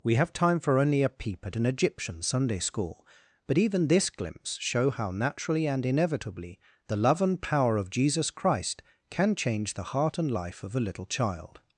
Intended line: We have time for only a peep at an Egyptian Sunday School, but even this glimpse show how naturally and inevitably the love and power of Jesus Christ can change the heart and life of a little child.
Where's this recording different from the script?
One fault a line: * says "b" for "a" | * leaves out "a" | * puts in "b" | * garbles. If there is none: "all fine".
all fine